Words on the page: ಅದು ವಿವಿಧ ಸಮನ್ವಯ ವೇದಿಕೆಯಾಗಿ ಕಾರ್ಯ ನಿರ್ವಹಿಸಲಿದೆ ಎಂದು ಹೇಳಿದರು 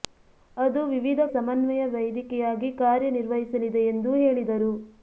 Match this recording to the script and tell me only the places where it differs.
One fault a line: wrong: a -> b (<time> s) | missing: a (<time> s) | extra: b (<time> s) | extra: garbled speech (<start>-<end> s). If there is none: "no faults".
no faults